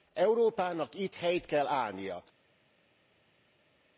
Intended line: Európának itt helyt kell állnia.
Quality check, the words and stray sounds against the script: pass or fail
pass